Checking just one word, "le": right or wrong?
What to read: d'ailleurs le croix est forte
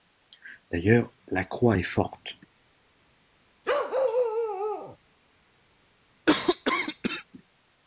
wrong